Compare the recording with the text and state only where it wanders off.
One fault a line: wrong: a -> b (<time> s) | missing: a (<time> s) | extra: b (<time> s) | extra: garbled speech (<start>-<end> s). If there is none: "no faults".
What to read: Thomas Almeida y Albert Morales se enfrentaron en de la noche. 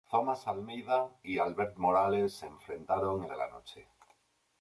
no faults